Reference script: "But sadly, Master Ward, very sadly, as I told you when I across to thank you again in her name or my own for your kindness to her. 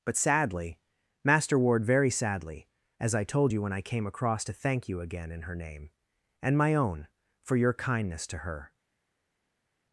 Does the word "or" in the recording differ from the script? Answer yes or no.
yes